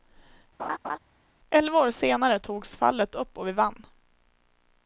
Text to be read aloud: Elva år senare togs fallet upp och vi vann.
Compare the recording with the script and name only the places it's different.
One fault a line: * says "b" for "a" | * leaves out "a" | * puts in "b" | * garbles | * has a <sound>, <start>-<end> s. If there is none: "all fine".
* has a laugh, 0.6-1.0 s